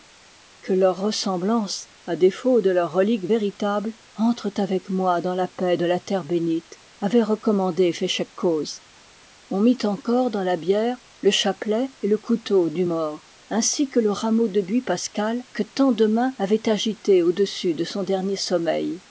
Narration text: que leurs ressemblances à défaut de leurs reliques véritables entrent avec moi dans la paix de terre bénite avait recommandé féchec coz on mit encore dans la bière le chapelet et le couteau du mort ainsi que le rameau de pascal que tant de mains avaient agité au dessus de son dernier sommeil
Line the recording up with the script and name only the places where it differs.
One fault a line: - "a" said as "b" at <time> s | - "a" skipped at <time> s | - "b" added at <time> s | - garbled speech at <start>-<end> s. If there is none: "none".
- "la" added at 5.9 s
- "buis" added at 14.6 s